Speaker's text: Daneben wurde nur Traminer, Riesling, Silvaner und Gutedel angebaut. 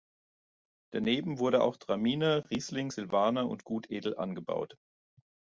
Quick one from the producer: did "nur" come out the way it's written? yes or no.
no